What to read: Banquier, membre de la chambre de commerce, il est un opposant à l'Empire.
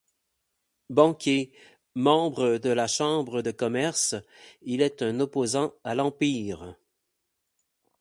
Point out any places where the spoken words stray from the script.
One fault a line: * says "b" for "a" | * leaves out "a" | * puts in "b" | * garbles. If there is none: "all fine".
all fine